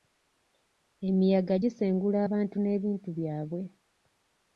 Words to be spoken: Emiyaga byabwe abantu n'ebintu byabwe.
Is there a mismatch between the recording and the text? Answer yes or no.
yes